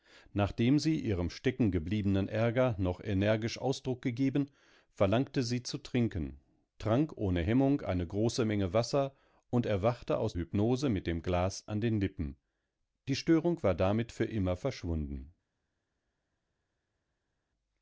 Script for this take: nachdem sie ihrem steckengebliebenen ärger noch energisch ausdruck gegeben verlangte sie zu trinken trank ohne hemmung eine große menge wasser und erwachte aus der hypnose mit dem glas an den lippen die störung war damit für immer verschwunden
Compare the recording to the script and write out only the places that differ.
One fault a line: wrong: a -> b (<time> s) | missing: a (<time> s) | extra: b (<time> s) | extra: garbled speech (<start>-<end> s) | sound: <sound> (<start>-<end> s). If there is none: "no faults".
missing: der (10.3 s)